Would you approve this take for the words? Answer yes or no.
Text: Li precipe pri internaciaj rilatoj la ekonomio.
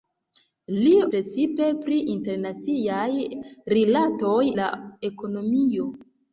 yes